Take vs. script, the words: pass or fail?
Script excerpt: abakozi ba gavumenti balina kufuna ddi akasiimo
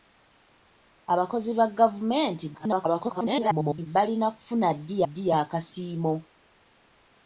fail